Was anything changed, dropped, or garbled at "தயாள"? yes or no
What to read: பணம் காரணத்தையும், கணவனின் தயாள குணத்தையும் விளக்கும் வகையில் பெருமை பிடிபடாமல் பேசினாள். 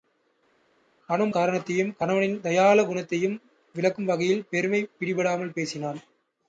no